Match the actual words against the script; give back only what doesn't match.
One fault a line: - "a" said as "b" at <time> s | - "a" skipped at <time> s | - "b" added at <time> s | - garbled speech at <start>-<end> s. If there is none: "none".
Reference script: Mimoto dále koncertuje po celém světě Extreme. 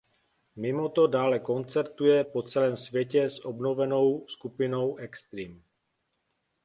- "s obnovenou skupinou" added at 3.3 s